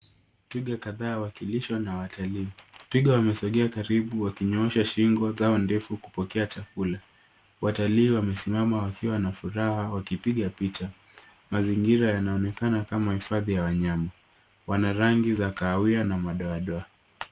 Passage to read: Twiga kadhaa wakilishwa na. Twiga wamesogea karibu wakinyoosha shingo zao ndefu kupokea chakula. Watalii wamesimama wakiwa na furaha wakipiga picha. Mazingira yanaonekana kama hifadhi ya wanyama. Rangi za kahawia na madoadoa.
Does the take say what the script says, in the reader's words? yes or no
no